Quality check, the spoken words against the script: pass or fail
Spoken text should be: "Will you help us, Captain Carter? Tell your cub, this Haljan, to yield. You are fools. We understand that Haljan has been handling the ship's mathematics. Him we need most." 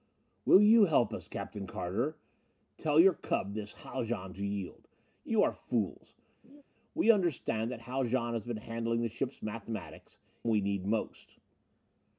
fail